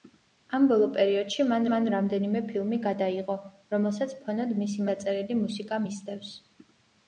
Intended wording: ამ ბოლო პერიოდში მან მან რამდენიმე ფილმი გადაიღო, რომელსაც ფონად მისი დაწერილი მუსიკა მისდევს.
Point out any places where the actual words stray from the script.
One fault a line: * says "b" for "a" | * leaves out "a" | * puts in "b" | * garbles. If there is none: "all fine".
all fine